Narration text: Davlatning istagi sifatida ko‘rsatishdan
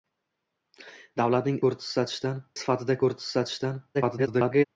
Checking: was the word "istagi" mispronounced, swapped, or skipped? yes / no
yes